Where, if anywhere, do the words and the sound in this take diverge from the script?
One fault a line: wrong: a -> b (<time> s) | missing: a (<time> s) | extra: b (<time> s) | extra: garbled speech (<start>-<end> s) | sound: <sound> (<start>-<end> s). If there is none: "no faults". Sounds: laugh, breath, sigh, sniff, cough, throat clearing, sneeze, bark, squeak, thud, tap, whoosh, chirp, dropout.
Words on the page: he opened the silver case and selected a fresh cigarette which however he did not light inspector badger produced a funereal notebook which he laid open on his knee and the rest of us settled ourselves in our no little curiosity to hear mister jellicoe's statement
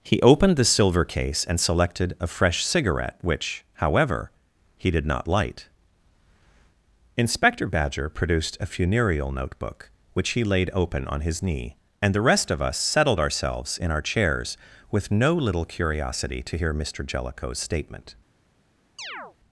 extra: chairs with (14.0 s)
sound: chirp (19.0-19.4 s)